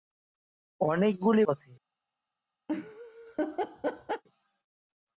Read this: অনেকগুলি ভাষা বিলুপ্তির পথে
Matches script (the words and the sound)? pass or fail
fail